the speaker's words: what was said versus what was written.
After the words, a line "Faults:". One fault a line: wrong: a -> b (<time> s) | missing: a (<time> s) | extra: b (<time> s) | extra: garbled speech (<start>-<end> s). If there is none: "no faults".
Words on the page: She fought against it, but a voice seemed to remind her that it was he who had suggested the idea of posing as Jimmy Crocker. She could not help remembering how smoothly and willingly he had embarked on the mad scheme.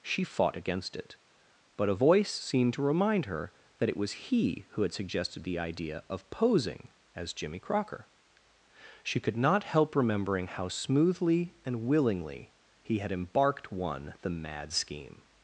She fought against it, but a voice seemed to remind her that it was he who had suggested the idea of posing as Jimmy Crocker. She could not help remembering how smoothly and willingly he had embarked one the mad scheme.
Faults:
wrong: on -> one (13.7 s)